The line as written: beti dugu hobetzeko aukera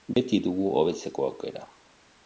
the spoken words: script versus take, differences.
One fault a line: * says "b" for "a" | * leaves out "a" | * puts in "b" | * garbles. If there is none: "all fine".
all fine